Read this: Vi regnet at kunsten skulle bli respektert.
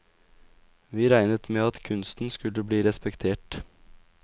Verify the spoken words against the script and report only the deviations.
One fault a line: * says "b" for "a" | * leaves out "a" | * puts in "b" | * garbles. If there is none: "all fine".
* puts in "med"